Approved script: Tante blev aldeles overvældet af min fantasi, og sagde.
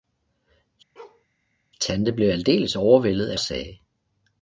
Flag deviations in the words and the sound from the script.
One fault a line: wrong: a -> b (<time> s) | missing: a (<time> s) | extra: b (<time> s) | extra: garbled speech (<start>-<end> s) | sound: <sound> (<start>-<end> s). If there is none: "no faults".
sound: bark (1.0-1.3 s)
missing: min fantasi og (3.4 s)